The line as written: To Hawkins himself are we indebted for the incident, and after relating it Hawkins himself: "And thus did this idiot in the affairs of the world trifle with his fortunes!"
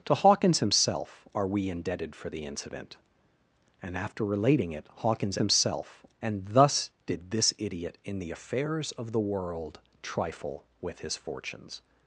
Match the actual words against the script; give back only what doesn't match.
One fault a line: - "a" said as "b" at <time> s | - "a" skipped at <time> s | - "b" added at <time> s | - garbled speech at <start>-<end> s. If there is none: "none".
none